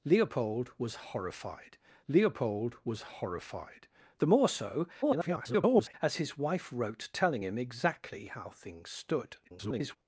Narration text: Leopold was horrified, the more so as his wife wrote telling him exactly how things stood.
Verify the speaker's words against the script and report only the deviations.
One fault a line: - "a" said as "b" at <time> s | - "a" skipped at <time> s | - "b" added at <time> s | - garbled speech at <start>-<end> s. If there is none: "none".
- "leopold was horrified" added at 2.1 s
- garbled speech at 5.0-5.9 s
- garbled speech at 9.4-10.0 s